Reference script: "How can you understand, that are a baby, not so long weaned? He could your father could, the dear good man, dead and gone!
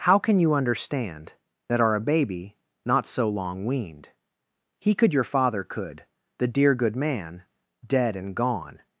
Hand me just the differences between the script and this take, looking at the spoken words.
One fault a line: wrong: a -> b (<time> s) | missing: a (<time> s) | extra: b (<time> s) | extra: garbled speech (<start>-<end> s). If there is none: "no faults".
no faults